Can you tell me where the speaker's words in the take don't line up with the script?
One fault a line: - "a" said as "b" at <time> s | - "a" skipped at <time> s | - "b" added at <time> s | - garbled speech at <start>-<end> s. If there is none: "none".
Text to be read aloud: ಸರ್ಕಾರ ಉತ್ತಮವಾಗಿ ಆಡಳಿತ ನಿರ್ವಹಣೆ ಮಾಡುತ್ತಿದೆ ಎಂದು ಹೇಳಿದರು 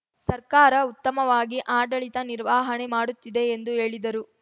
none